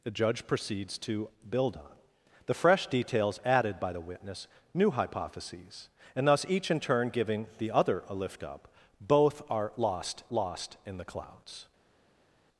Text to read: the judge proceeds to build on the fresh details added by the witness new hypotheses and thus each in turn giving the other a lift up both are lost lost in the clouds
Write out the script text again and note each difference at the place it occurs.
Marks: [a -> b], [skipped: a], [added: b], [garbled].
the judge proceeds to build on the fresh details added by the witness new hypotheses and thus each in turn giving the other a lift up both are lost lost in the clouds